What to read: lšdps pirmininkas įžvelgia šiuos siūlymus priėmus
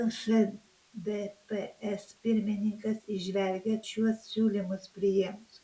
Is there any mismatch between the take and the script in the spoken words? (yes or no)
no